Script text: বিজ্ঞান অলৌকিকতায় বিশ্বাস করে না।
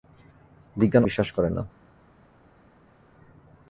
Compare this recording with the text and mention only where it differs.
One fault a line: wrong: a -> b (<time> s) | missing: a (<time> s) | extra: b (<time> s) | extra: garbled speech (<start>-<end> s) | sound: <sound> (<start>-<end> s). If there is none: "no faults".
missing: অলৌকিকতায় (1.1 s)